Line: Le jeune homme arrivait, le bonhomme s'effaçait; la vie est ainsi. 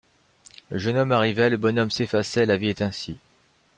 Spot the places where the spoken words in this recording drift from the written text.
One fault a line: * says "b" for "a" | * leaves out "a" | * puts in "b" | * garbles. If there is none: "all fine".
all fine